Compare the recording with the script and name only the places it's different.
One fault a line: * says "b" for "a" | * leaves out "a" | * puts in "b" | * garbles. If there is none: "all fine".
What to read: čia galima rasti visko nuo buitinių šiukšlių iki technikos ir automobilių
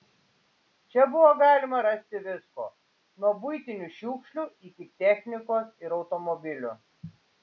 * puts in "buvo"